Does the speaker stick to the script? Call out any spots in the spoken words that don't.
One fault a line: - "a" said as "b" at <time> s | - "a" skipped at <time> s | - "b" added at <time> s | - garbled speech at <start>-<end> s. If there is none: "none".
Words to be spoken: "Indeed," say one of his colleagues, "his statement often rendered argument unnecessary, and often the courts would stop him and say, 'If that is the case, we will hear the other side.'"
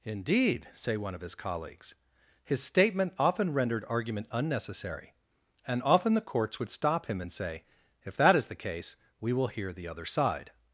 none